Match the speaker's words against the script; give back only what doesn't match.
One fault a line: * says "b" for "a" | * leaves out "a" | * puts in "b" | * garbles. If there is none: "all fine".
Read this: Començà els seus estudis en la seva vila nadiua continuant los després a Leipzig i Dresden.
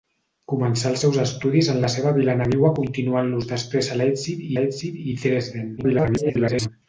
* puts in "Leipzig"
* garbles